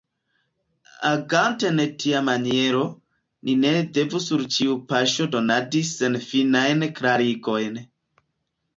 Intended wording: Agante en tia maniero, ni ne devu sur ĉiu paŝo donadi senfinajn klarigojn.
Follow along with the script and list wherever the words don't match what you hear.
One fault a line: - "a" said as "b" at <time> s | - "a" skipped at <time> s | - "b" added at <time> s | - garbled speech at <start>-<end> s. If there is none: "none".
none